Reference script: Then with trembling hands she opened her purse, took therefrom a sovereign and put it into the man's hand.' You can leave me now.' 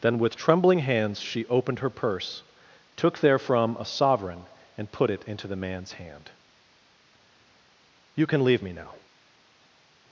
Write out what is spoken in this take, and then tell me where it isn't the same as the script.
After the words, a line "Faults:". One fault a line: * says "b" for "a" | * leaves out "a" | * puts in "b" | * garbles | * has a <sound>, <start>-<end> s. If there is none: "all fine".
Then with trembling hands she opened her purse, took therefrom a sovereign and put it into the man's hand.' You can leave me now.'
Faults:
all fine